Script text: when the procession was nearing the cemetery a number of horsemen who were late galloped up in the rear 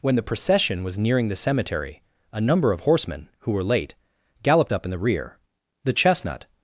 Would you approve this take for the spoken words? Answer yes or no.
no